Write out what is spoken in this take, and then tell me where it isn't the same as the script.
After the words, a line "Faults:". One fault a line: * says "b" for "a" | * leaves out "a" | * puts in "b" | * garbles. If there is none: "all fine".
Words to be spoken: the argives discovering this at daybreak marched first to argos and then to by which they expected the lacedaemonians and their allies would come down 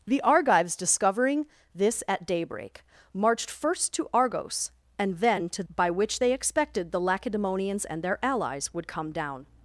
the argives discovering this at daybreak marched first to argos and then to by which they expected the lacedaemonians and their allies would come down
Faults:
all fine